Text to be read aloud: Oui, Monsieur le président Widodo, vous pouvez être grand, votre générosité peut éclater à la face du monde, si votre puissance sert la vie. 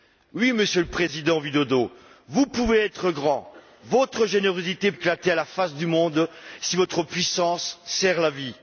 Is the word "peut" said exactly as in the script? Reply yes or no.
no